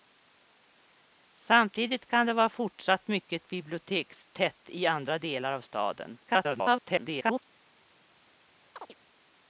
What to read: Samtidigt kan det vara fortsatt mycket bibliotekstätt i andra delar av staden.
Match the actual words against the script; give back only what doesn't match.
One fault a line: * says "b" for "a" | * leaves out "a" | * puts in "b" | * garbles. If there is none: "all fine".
* garbles